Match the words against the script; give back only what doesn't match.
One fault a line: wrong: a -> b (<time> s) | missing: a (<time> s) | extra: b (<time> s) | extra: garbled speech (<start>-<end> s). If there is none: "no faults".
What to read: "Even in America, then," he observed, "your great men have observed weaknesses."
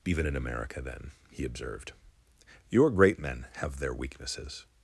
wrong: observed -> their (3.8 s)